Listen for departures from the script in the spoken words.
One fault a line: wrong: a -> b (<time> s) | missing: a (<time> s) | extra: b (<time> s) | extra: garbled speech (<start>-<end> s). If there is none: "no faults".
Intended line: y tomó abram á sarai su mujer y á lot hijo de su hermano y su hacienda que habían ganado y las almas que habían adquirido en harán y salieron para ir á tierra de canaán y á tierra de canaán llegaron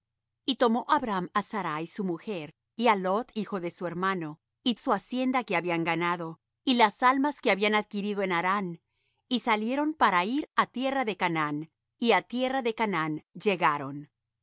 no faults